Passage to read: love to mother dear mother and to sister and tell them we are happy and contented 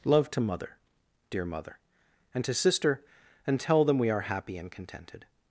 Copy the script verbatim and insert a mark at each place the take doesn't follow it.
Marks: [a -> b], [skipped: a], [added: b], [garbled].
love to mother dear mother and to sister and tell them we are happy and contented